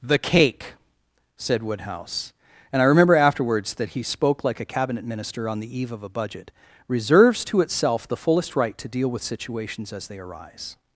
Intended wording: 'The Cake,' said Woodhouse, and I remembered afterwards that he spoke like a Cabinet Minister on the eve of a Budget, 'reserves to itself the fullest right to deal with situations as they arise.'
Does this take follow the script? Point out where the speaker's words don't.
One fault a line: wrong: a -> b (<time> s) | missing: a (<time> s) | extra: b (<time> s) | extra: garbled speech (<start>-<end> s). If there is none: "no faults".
wrong: remembered -> remember (2.9 s)